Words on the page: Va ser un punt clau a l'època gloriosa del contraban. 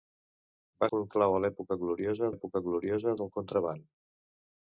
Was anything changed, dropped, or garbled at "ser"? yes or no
yes